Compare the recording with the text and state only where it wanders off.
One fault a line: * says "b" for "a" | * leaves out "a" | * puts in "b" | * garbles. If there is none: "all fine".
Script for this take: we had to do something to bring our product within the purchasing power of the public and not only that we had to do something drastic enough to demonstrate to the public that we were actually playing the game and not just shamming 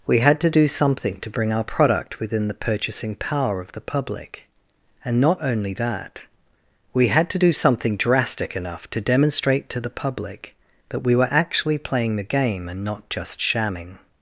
all fine